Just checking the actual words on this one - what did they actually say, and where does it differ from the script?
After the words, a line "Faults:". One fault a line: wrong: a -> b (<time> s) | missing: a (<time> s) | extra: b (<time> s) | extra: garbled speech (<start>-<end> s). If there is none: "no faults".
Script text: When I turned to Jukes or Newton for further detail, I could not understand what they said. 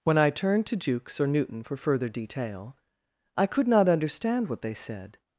When I turned to Jukes or Newton for further detail, I could not understand what they said.
Faults:
no faults